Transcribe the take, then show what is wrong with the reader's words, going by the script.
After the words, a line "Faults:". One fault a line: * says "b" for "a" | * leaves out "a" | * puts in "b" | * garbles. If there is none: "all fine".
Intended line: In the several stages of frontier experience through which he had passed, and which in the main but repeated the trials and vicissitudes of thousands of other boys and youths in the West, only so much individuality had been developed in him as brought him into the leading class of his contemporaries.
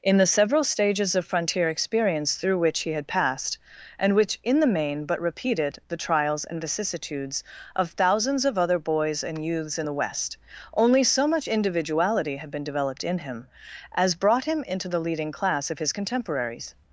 In the several stages of frontier experience through which he had passed, and which in the main but repeated the trials and vicissitudes of thousands of other boys and youths in the West, only so much individuality had been developed in him as brought him into the leading class of his contemporaries.
Faults:
all fine